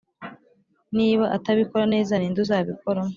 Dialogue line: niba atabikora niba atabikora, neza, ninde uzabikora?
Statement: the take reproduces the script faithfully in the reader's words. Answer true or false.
false